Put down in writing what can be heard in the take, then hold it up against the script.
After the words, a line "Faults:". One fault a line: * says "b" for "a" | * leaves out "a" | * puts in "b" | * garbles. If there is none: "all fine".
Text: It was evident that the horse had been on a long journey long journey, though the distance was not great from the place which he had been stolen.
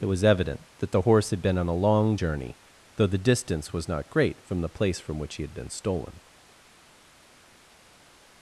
It was evident that the horse had been on a long journey, though the distance was not great from the place from which he had been stolen.
Faults:
* leaves out "long journey"
* puts in "from"